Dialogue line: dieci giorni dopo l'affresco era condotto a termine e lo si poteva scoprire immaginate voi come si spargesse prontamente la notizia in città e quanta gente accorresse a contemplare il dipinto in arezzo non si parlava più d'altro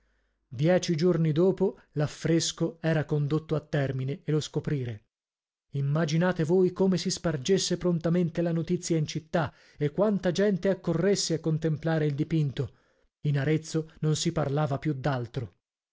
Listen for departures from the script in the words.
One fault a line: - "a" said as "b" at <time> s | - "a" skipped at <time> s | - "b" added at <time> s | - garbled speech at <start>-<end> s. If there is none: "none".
- "si poteva" skipped at 4.4 s